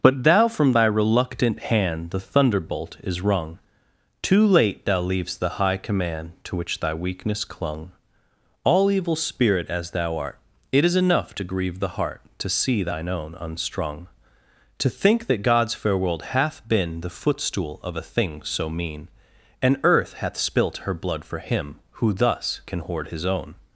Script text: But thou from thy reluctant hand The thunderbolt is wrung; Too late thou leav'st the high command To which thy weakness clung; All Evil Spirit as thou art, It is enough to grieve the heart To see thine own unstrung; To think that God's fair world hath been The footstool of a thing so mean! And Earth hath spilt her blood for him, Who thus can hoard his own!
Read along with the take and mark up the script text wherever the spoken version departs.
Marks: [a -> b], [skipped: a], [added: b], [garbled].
But thou from thy reluctant hand The thunderbolt is wrung; Too late thou leav'st the high command To which thy weakness clung; All Evil Spirit as thou art, It is enough to grieve the heart To see thine own unstrung; To think that God's fair world hath been The footstool of a thing so mean! And Earth hath spilt her blood for him, Who thus can hoard his own!